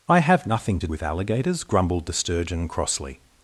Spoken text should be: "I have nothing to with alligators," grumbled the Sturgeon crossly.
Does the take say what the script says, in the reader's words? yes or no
yes